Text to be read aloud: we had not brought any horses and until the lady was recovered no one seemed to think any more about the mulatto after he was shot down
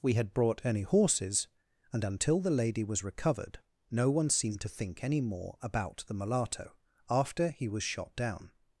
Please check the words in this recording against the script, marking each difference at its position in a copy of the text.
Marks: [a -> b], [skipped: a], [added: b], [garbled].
we had [skipped: not] brought any horses and until the lady was recovered no one seemed to think any more about the mulatto after he was shot down